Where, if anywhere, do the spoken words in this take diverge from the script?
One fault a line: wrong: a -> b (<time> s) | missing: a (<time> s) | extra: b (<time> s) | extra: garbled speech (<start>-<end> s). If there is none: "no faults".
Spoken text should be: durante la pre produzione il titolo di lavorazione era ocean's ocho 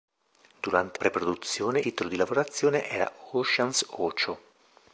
missing: la (1.0 s)
missing: il (1.8 s)